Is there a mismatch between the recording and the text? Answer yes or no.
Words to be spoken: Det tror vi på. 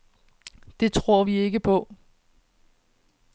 yes